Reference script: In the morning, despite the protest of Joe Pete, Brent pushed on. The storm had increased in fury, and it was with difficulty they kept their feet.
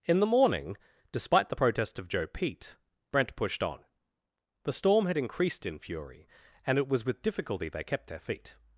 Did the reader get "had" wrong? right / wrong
right